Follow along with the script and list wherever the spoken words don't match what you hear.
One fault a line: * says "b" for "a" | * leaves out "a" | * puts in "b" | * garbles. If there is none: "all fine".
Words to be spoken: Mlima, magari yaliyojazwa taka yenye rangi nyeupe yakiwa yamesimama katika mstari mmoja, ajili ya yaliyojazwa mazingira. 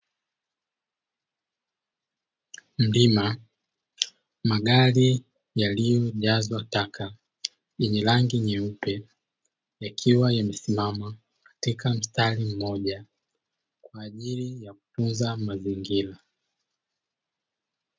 * puts in "kwa"
* says "kutunza" for "yaliyojazwa"